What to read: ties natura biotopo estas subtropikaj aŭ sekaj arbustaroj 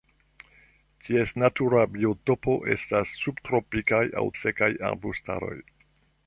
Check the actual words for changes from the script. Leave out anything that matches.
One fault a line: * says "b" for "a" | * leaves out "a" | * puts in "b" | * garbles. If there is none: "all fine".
all fine